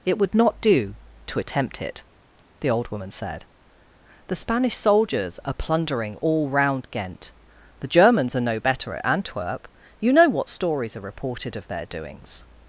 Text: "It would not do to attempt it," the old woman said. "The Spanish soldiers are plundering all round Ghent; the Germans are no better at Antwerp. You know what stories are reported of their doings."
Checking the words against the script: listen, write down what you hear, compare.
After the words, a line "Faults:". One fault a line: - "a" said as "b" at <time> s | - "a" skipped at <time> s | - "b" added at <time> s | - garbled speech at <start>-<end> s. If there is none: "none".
"It would not do to attempt it," the old woman said. "The Spanish soldiers are plundering all round Ghent; the Germans are no better at Antwerp. You know what stories are reported of their doings."
Faults:
none